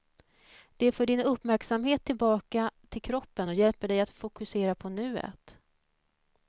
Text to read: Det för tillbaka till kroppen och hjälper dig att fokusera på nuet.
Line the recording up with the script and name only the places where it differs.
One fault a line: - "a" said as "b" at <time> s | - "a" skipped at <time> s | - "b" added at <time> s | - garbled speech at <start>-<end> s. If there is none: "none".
- "din uppmärksamhet" added at 1.1 s